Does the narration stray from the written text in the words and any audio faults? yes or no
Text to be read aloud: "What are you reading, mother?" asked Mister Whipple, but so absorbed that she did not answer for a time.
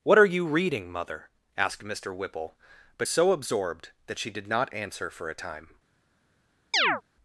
yes